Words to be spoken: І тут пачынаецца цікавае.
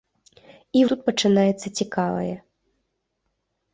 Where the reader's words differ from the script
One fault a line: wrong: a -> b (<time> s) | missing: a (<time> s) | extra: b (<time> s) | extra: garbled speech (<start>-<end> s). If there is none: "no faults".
no faults